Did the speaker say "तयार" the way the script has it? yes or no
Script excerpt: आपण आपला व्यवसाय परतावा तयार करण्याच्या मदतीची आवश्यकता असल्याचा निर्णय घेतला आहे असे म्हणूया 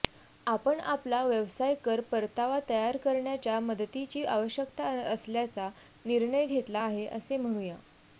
yes